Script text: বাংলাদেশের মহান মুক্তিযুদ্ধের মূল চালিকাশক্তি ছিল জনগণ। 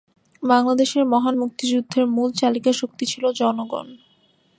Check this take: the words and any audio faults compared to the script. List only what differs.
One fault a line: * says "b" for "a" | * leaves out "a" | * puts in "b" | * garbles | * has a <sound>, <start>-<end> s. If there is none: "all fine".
all fine